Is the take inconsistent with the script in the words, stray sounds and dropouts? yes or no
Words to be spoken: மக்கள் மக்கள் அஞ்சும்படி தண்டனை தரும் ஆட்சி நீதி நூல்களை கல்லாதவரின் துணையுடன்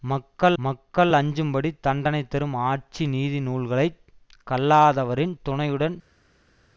no